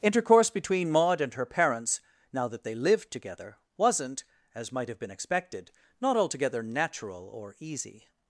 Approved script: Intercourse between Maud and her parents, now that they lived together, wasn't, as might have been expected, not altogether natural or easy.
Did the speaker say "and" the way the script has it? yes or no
yes